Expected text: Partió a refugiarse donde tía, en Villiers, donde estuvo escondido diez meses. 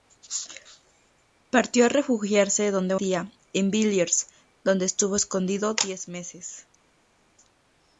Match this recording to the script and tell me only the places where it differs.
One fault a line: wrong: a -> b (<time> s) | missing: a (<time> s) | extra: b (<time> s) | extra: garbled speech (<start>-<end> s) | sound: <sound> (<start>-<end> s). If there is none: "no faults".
no faults